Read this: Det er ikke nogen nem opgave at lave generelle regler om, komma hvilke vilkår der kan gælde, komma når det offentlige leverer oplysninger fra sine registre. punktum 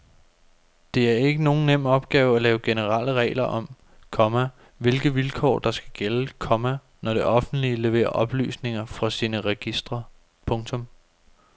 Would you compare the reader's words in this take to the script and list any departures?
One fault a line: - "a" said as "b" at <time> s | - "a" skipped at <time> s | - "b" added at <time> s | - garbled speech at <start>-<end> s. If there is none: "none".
- "kan" said as "skal" at 5.7 s